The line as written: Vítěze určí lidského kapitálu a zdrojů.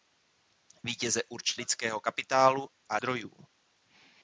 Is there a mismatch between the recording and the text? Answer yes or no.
no